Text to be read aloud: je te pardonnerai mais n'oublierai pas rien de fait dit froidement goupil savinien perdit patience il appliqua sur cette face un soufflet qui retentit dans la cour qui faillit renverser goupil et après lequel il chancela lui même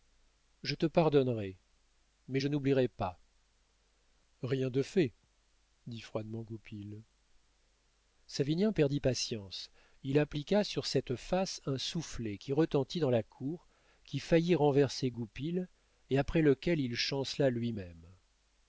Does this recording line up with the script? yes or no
no